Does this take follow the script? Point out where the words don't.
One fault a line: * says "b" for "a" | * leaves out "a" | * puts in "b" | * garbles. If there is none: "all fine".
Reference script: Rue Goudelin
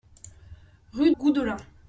all fine